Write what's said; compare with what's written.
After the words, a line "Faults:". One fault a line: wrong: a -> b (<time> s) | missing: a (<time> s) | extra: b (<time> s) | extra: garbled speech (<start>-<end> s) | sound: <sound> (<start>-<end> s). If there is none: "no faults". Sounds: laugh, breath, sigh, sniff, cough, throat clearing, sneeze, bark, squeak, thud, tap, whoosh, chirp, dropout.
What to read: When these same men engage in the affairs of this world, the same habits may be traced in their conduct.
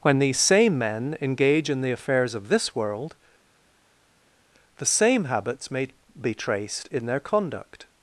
When these same men engage in the affairs of this world, the same habits may be traced in their conduct.
Faults:
no faults